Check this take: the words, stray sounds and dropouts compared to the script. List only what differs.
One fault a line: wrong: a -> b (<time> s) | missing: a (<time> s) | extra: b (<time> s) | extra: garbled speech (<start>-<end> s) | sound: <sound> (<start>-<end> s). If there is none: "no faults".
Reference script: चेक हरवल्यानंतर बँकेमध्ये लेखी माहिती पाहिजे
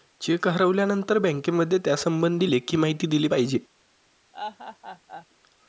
extra: त्यासंबंधी (1.8 s)
extra: दिली (3.1 s)
sound: laugh (4.3-5.3 s)